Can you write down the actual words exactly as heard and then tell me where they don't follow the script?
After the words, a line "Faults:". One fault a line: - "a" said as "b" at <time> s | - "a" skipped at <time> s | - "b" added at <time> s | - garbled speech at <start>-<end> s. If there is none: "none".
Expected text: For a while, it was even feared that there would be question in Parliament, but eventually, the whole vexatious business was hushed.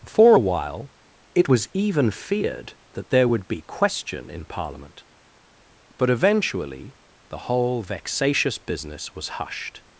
For a while, it was even feared that there would be question in Parliament, but eventually, the whole vexatious business was hushed.
Faults:
none